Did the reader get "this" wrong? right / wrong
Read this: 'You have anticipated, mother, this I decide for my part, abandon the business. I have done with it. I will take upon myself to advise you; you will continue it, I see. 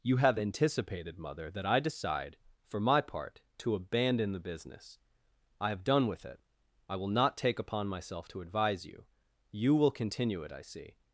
wrong